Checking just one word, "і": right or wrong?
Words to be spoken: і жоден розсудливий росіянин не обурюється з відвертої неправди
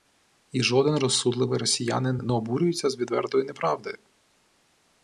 right